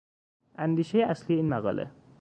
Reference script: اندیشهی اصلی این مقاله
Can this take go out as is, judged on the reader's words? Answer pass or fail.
pass